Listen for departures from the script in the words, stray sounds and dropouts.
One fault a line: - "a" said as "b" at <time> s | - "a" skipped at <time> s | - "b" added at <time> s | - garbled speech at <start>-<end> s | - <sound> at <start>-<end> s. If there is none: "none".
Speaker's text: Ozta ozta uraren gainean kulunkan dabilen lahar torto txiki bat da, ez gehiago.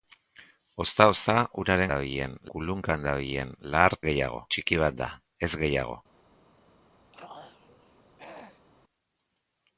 - "gainean" said as "dabilen" at 1.9 s
- "torto" said as "gehiago" at 4.1 s
- throat clearing at 7.1-8.7 s